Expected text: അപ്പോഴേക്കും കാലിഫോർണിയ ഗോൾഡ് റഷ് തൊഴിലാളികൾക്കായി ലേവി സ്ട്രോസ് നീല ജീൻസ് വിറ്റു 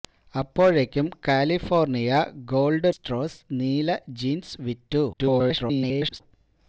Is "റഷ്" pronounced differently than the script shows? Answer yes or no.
yes